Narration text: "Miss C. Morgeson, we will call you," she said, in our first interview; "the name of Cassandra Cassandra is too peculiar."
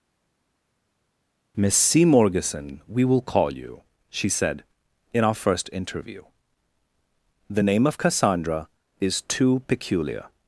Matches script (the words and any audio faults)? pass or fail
fail